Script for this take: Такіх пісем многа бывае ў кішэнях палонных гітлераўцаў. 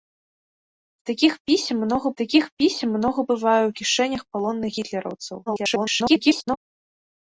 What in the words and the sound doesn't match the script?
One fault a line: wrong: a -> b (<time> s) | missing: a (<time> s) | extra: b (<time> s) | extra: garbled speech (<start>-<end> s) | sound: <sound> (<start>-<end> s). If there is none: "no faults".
extra: такіх пісем многа (2.2 s)
extra: garbled speech (5.5-6.6 s)